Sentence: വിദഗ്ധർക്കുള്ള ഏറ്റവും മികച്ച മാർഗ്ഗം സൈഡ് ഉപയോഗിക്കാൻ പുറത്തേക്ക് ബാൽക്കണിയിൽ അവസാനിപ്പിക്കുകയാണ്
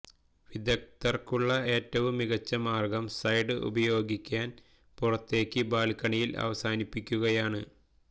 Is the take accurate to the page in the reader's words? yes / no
yes